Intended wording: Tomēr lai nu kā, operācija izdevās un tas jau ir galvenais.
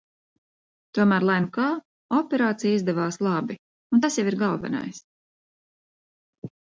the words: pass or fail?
fail